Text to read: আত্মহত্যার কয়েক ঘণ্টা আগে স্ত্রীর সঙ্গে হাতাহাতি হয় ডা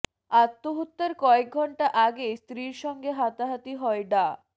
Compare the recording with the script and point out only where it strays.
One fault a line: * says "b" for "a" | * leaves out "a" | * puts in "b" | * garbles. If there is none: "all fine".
all fine